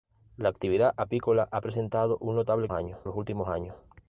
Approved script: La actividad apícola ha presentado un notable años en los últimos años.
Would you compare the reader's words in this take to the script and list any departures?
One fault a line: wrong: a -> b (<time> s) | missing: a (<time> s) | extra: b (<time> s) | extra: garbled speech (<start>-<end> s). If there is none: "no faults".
no faults